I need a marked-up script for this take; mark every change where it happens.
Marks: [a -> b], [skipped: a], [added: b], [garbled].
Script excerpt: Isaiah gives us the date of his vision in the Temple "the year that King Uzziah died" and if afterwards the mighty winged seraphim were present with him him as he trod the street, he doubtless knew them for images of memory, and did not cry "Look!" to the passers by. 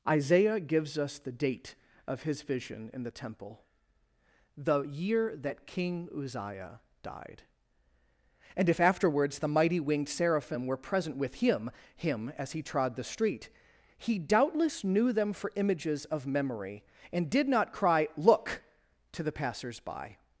Isaiah gives us the date of his vision in the Temple "the year that King Uzziah died" and if afterwards the mighty winged seraphim were present with him him as he trod the street, he doubtless knew them for images of memory, and did not cry "Look!" to the passers by.